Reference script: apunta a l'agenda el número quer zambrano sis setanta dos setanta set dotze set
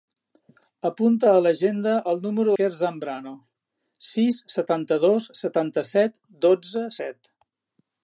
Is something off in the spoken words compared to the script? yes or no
no